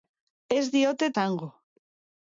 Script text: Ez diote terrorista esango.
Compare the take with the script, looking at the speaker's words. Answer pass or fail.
fail